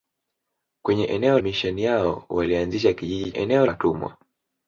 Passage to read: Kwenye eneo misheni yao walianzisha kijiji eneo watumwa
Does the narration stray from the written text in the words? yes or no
no